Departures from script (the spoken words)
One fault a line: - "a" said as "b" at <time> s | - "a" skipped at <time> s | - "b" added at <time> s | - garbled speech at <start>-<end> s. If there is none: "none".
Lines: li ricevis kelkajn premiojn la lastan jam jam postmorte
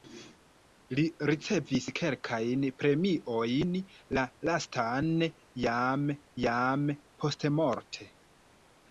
none